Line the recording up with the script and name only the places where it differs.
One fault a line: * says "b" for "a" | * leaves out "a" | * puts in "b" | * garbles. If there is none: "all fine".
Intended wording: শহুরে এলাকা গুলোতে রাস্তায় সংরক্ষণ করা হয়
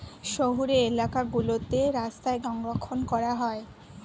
all fine